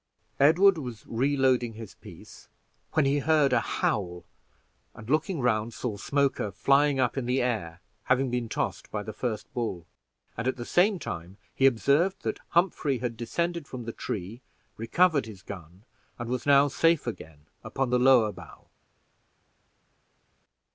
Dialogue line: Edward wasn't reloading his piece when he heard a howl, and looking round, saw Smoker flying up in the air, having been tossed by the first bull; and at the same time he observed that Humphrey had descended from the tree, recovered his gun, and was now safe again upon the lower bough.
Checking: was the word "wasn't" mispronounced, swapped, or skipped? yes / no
yes